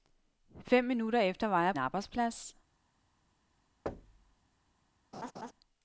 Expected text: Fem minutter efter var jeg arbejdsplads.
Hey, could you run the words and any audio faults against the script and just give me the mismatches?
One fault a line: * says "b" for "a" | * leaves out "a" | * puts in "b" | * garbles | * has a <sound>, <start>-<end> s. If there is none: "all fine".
* has a thud, 3.9-4.4 s
* has a laugh, 5.1-5.5 s